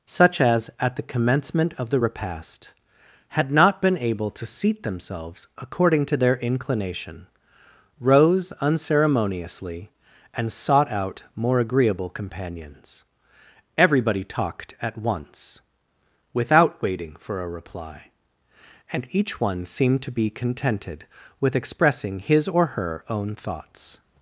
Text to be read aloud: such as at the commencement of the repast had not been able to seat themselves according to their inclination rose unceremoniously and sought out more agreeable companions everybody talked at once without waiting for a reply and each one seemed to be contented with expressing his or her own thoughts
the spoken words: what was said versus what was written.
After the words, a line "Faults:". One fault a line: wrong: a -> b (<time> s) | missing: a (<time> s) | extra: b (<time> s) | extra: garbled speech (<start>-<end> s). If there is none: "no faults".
such as at the commencement of the repast had not been able to seat themselves according to their inclination rose unceremoniously and sought out more agreeable companions everybody talked at once without waiting for a reply and each one seemed to be contented with expressing his or her own thoughts
Faults:
no faults